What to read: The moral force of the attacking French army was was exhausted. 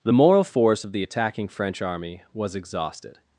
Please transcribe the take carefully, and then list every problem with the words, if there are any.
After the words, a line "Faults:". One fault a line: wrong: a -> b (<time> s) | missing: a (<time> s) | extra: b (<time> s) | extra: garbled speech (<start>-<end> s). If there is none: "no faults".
The moral force of the attacking French army was exhausted.
Faults:
missing: was (2.5 s)